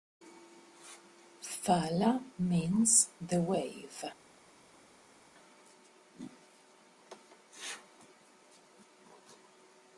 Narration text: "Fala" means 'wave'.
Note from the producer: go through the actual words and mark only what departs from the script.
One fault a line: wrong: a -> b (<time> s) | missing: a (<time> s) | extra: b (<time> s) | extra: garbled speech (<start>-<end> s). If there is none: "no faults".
extra: the (3.2 s)